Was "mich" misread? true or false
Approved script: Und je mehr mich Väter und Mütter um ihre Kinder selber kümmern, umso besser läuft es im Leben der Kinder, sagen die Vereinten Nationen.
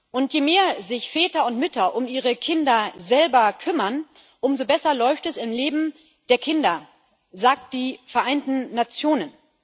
true